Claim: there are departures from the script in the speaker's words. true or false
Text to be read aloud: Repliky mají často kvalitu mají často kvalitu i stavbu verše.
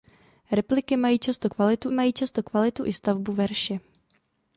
false